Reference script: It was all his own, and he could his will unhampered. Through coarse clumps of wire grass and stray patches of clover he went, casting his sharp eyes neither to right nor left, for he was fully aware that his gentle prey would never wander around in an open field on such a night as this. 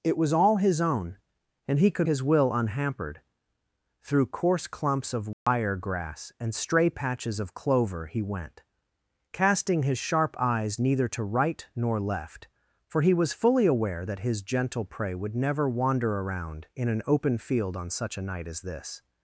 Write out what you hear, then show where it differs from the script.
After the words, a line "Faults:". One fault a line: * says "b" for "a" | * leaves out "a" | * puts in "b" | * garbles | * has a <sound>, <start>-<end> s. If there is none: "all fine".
It was all his own, and he could his will unhampered. Through coarse clumps of wire grass and stray patches of clover he went, casting his sharp eyes neither to right nor left, for he was fully aware that his gentle prey would never wander around in an open field on such a night as this.
Faults:
* has a dropout, 5.3-5.5 s